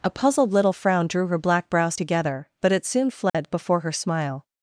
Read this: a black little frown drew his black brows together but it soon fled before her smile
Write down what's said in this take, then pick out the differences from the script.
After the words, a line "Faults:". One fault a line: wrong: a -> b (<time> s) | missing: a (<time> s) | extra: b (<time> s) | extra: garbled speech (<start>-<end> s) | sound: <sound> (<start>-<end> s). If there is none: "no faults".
a puzzled little frown drew her black brows together but it soon fled before her smile
Faults:
wrong: black -> puzzled (0.1 s)
wrong: his -> her (1.3 s)
sound: dropout (3.3-3.3 s)